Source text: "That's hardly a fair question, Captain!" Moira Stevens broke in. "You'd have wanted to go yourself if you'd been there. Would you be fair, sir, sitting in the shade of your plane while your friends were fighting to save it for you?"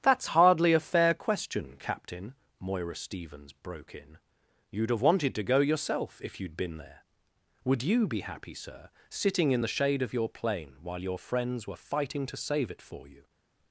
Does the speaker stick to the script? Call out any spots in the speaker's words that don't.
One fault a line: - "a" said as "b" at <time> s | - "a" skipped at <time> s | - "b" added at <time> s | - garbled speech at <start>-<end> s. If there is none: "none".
- "fair" said as "happy" at 8.2 s